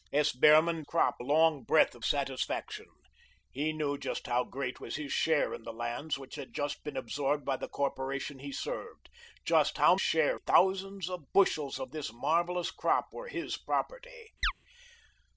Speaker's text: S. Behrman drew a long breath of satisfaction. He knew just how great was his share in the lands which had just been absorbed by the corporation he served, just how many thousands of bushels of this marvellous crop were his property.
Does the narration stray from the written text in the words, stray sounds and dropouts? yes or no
yes